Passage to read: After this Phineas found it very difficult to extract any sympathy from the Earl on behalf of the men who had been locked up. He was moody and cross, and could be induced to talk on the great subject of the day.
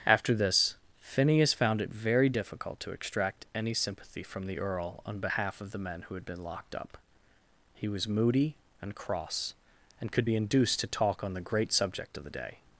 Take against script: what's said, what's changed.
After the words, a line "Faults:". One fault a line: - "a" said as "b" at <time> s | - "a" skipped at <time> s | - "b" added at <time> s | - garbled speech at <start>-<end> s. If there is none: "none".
After this Phineas found it very difficult to extract any sympathy from the Earl on behalf of the men who had been locked up. He was moody and cross, and could be induced to talk on the great subject of the day.
Faults:
none